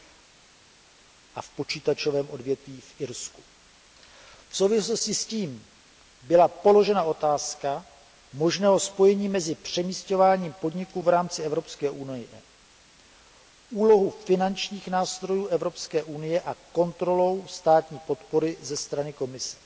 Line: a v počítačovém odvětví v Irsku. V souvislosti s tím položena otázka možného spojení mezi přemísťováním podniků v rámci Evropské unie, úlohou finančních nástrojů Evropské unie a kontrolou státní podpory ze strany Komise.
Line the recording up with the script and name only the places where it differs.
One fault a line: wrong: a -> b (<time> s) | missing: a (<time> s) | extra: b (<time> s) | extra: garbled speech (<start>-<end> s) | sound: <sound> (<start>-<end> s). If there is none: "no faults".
extra: byla (6.2 s)